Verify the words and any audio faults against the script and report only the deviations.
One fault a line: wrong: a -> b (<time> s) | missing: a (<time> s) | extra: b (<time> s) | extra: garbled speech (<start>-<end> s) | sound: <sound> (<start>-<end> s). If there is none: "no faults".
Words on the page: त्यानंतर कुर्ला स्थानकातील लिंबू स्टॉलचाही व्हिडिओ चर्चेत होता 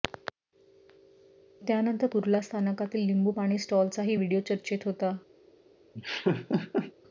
extra: पाणी (3.3 s)
sound: laugh (5.9-6.9 s)